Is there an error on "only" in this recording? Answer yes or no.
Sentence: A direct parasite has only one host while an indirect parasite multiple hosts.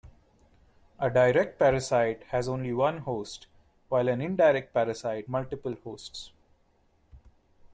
no